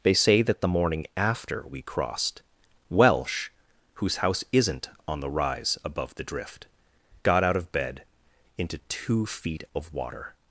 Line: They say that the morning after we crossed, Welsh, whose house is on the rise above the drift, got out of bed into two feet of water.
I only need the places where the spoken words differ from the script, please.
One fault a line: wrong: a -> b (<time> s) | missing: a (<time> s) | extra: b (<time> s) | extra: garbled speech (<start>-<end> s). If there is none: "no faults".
wrong: is -> isn't (4.5 s)